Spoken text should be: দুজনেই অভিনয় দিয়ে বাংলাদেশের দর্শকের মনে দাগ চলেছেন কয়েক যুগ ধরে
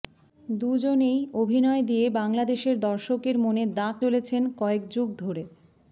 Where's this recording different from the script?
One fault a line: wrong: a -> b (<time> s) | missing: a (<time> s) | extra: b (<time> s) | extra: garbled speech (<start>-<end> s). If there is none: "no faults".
no faults